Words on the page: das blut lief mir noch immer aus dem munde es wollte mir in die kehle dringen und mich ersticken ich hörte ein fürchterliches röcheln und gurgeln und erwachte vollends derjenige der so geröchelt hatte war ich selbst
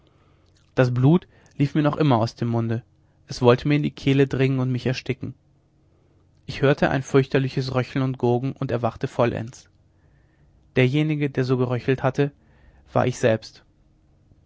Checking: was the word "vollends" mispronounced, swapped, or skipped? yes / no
no